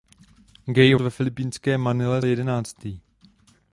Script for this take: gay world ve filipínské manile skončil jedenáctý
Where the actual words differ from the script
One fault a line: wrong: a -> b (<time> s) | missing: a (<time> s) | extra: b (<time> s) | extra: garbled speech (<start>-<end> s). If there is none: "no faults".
missing: world (0.9 s)
missing: skončil (2.2 s)